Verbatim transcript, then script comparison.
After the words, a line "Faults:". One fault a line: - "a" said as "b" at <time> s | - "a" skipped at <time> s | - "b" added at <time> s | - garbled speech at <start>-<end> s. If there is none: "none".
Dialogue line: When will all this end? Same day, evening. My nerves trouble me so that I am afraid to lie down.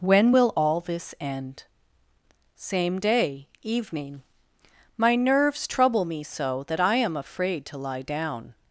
When will all this end? Same day, evening. My nerves trouble me so that I am afraid to lie down.
Faults:
none